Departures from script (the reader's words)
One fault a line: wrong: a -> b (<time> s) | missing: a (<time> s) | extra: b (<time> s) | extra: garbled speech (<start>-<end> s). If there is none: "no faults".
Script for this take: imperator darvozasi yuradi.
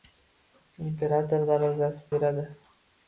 no faults